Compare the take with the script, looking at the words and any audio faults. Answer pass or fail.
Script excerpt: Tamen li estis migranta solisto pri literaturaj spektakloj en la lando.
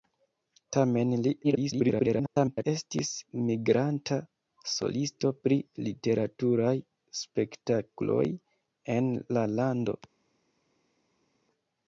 fail